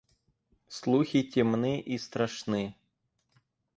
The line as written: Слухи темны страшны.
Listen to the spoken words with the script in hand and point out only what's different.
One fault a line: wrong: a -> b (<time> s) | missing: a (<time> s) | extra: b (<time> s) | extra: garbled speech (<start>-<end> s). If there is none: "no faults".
extra: и (1.8 s)